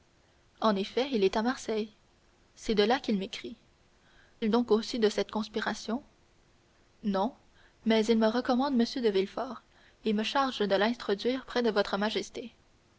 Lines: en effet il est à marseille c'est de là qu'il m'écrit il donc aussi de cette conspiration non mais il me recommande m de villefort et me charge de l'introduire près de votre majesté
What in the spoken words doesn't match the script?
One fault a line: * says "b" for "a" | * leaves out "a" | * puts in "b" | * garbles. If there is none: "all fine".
all fine